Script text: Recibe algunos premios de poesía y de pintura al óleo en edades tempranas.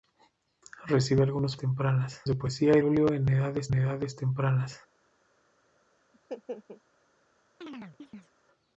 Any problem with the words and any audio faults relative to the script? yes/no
yes